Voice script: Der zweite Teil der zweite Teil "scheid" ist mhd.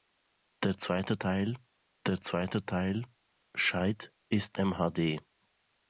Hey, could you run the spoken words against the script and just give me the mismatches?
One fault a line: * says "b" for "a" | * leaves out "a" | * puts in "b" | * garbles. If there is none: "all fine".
all fine